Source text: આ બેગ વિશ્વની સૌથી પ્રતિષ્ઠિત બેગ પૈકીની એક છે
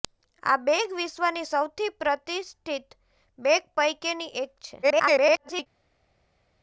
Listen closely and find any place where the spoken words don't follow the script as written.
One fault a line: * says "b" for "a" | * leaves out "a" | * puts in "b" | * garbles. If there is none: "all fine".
* garbles